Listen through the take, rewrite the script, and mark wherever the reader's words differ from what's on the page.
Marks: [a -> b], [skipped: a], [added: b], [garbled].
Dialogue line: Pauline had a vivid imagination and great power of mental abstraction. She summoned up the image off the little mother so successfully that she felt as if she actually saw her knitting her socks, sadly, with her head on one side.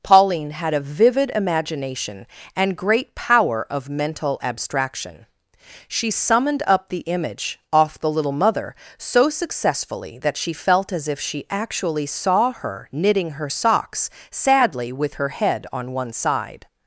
Pauline had a vivid imagination and great power of mental abstraction. She summoned up the image off the little mother so successfully that she felt as if she actually saw her knitting her socks, sadly, with her head on one side.